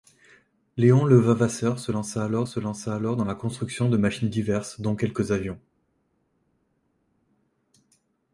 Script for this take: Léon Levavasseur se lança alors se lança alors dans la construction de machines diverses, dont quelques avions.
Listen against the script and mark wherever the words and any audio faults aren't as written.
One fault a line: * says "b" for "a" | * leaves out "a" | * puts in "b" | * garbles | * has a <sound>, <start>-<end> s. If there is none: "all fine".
all fine